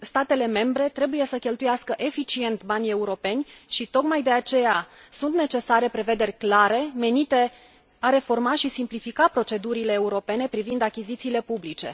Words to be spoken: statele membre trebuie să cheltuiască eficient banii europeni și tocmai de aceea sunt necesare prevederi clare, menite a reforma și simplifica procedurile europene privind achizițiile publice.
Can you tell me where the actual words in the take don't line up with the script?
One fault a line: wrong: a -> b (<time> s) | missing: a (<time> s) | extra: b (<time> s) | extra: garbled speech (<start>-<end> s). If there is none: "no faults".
no faults